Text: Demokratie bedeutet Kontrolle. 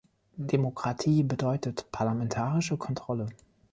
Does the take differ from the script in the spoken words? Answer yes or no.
yes